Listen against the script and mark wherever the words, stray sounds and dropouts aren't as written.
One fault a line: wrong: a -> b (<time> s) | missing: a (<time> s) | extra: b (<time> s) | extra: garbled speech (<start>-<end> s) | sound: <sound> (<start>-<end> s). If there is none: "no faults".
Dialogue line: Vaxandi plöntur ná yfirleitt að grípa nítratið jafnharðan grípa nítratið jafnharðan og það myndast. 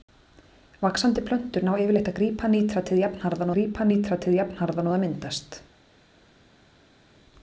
no faults